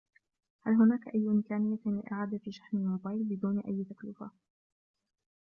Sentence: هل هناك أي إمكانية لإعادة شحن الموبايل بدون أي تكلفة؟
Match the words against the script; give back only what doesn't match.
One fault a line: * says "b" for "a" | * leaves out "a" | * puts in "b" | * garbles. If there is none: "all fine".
all fine